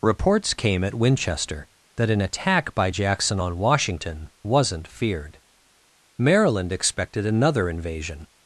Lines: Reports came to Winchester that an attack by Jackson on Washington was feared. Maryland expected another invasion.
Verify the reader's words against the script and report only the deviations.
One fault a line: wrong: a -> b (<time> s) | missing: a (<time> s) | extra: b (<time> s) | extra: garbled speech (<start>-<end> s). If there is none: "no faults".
wrong: to -> at (0.8 s)
wrong: was -> wasn't (4.4 s)